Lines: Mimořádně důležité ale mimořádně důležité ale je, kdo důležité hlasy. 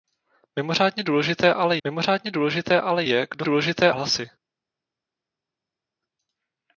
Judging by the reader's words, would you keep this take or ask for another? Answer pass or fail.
pass